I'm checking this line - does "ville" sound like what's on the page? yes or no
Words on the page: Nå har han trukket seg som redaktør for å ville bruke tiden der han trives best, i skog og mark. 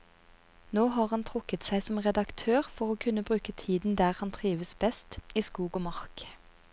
no